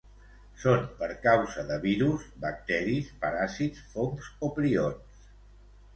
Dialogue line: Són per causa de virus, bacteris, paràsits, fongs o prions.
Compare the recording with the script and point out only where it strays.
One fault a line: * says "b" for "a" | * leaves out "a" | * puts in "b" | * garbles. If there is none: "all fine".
all fine